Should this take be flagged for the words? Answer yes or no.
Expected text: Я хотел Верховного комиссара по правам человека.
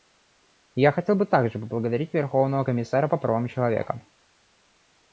yes